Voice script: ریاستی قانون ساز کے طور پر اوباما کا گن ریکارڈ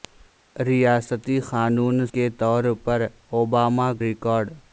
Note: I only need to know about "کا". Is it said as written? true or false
false